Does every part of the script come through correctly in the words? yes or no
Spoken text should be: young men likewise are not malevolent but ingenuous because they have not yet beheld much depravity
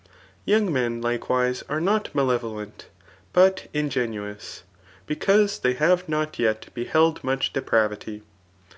yes